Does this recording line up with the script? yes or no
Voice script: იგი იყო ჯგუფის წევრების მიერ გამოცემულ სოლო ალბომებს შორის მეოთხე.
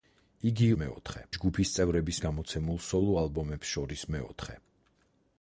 no